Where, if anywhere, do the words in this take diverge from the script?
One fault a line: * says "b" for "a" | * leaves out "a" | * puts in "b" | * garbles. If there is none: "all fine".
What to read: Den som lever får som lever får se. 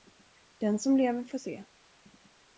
* leaves out "som lever får"